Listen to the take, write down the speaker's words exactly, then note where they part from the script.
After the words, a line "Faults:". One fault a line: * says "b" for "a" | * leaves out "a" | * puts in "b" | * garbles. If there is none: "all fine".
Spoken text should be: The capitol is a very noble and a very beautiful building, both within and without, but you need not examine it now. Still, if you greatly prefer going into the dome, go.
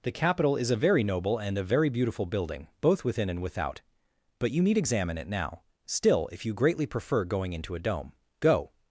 The capitol is a very noble and a very beautiful building, both within and without, but you need examine it now. Still, if you greatly prefer going into a dome, go.
Faults:
* leaves out "not"
* says "a" for "the"